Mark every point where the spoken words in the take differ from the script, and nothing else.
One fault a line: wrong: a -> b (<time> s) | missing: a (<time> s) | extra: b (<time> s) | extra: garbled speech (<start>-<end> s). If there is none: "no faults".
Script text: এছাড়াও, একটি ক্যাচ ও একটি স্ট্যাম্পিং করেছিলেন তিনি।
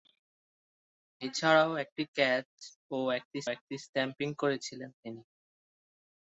extra: একটি (3.5 s)